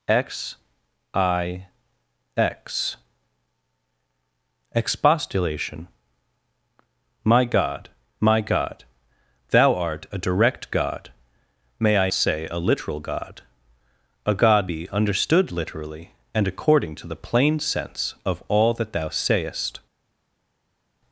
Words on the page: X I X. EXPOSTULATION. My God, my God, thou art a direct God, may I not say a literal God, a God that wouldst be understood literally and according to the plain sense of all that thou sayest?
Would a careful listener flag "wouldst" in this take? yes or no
yes